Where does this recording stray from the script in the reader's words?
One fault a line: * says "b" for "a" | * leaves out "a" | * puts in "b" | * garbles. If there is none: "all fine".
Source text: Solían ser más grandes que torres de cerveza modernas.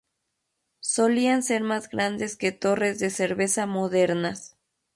all fine